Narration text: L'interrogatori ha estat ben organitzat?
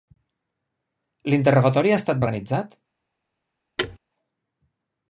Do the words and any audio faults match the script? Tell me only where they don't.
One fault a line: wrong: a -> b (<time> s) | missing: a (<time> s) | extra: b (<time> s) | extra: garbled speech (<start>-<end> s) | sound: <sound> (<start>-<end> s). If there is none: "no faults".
missing: ben (2.2 s)
sound: thud (3.8-4.0 s)